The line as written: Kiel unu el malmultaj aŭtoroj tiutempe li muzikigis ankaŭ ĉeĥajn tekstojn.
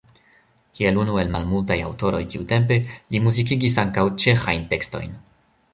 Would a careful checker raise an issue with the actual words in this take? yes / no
no